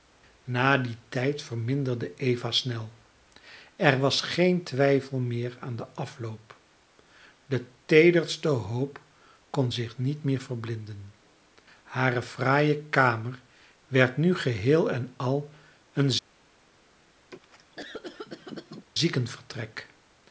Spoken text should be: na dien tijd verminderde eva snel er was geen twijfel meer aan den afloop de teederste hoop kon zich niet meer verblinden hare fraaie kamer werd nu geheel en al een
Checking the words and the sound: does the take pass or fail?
fail